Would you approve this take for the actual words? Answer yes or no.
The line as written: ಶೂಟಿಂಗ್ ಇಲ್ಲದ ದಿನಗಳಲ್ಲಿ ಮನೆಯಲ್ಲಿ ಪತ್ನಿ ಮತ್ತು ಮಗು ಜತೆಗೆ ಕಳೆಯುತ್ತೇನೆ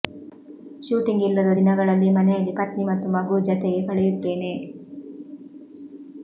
yes